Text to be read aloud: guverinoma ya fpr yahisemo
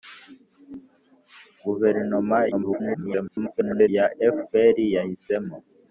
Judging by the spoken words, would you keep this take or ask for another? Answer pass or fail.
fail